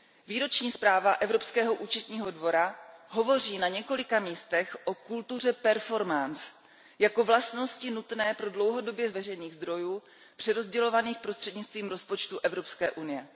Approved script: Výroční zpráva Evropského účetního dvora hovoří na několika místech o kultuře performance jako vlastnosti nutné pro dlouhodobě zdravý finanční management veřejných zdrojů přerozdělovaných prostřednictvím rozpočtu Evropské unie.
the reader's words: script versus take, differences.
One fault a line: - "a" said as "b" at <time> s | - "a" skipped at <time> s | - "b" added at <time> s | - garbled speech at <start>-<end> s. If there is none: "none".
- "zdravý finanční management" skipped at 9.1 s